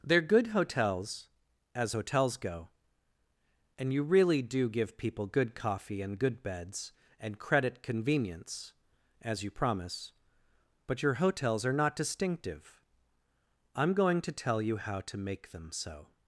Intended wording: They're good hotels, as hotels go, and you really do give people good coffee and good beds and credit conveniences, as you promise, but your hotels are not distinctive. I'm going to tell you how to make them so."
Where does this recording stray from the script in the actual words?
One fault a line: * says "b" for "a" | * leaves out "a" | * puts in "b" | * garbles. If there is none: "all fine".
* says "convenience" for "conveniences"